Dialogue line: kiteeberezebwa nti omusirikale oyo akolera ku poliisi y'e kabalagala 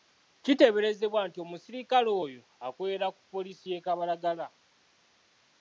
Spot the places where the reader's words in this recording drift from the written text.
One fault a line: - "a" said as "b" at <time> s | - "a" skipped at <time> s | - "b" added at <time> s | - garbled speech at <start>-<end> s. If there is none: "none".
none